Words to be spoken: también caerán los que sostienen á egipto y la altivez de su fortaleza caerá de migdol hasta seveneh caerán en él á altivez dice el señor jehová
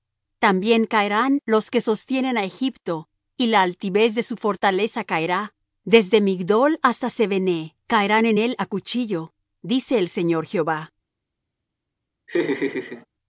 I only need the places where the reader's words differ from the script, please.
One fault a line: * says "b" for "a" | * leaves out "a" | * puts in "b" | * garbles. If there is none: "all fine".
* says "desde" for "de"
* says "cuchillo" for "altivez"